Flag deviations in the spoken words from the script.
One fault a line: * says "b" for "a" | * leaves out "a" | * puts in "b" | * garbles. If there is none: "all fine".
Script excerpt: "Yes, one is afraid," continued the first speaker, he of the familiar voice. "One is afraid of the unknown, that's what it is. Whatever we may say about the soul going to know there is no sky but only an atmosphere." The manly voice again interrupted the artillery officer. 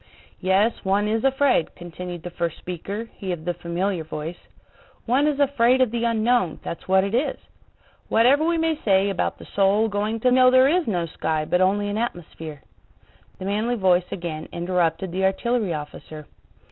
all fine